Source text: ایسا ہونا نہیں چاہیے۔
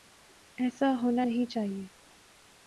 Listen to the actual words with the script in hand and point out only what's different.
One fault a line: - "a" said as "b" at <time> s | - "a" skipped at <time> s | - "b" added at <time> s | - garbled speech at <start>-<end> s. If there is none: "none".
none